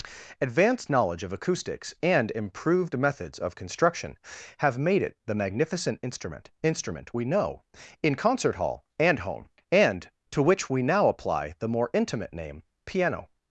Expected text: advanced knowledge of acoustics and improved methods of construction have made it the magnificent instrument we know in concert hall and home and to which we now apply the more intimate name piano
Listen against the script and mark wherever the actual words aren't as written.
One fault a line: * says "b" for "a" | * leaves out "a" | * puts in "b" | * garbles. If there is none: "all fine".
* puts in "instrument"